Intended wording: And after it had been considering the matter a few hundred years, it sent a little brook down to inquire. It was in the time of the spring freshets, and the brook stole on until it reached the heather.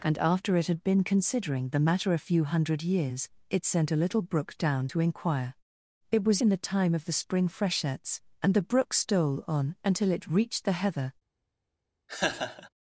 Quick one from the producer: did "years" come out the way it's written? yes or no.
yes